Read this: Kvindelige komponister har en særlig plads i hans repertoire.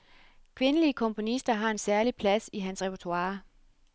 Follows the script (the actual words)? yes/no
yes